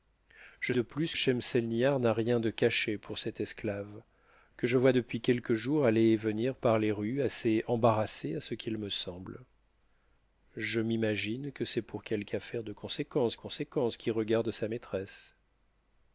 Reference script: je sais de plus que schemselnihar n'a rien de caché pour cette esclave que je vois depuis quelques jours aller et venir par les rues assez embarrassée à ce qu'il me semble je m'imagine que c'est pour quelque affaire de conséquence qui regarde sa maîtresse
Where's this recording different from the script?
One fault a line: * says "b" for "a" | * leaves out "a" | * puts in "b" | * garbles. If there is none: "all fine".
* leaves out "sais"
* leaves out "que"
* puts in "conséquence"